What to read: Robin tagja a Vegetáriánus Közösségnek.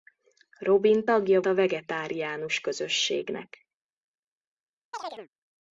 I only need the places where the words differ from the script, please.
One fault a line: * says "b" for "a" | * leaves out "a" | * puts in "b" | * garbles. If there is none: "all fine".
all fine